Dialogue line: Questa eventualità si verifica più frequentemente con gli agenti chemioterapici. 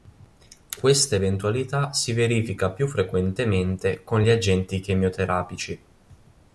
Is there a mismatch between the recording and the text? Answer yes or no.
no